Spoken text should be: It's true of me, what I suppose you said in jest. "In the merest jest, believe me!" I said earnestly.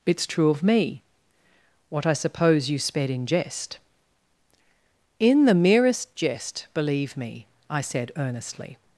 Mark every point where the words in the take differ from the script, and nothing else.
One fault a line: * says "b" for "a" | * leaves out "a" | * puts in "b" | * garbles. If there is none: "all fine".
* says "sped" for "said"